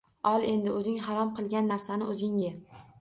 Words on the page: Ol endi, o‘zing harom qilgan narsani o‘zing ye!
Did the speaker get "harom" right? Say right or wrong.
right